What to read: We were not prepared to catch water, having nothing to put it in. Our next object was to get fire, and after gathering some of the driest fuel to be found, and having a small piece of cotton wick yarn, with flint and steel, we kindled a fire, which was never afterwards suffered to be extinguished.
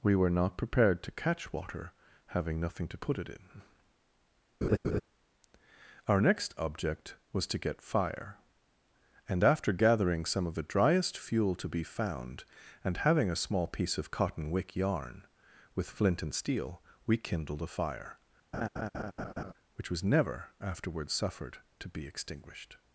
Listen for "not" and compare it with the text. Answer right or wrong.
right